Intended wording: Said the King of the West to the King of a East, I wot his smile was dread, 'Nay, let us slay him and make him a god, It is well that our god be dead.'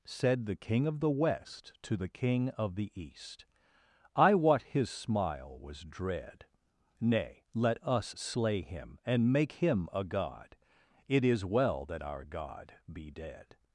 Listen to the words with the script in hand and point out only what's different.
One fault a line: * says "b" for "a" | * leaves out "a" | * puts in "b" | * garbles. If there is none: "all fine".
* says "the" for "a"